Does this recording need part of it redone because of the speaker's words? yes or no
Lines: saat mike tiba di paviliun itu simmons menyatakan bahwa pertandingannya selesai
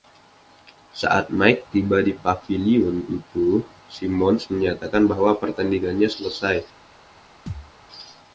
no